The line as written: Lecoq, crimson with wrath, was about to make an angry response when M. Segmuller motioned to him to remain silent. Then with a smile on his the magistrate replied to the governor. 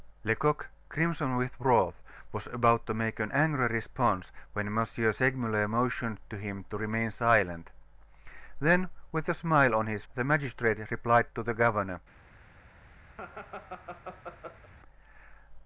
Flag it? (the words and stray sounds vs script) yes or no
yes